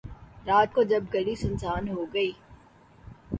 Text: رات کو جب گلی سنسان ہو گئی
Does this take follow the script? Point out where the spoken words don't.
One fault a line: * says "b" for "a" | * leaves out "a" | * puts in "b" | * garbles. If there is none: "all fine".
all fine